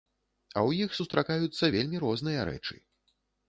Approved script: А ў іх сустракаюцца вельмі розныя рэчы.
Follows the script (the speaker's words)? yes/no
yes